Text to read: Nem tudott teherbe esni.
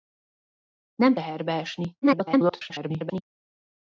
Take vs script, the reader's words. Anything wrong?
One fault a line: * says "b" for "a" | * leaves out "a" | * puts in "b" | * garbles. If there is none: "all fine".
* leaves out "tudott"
* garbles